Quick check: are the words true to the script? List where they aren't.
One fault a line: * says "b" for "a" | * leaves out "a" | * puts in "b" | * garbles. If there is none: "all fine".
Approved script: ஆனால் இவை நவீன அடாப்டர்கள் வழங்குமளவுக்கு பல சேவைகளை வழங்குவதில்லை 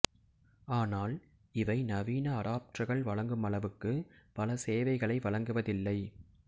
all fine